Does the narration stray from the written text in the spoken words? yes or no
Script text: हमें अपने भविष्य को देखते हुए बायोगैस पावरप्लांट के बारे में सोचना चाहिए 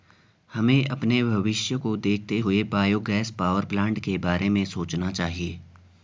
no